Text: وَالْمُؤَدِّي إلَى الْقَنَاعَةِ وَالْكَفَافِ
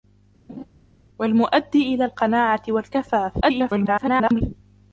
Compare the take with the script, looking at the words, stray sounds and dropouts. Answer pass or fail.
fail